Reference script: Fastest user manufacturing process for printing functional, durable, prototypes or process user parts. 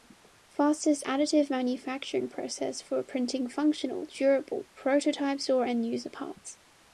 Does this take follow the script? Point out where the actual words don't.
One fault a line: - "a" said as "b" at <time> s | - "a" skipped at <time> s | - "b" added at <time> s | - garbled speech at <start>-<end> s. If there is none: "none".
- "user" said as "additive" at 1.0 s
- "process" said as "end" at 5.6 s